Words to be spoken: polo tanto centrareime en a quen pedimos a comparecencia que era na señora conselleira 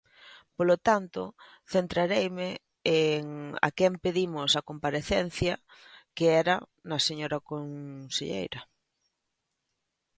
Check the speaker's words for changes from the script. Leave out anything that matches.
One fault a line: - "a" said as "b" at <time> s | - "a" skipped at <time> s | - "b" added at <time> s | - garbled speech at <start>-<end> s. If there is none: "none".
none